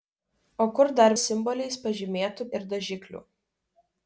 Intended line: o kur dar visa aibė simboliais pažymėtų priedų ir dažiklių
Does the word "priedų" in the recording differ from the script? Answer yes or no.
yes